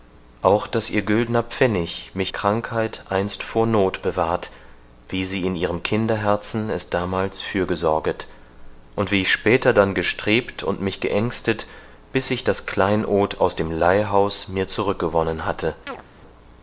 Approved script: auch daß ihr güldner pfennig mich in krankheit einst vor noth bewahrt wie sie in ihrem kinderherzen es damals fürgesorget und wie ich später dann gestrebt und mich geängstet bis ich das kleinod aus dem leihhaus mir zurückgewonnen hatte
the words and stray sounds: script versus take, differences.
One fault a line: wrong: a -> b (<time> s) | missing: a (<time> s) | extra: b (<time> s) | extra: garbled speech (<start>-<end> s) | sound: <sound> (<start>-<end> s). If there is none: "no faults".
missing: in (2.3 s)
sound: chirp (15.9-16.0 s)